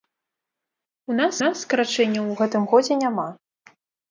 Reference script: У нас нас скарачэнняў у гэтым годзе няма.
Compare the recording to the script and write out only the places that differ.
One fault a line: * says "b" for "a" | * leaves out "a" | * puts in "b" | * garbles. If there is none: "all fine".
all fine